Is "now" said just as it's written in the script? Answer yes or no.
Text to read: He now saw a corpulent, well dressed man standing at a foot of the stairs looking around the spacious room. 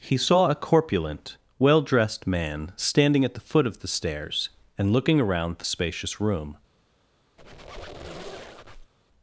no